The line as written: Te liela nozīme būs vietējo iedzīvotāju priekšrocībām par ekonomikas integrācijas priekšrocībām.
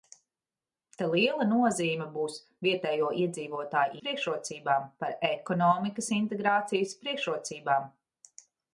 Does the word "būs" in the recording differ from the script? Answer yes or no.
no